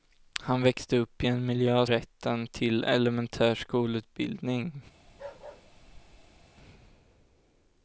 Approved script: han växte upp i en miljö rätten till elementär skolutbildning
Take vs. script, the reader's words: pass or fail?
pass